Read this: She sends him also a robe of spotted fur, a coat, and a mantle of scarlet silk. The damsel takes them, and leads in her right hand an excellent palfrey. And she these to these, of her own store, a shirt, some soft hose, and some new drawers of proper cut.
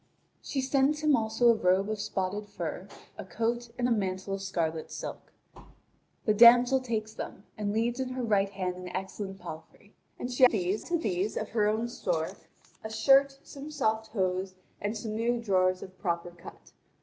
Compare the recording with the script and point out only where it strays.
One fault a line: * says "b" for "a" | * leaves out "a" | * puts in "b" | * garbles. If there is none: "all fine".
all fine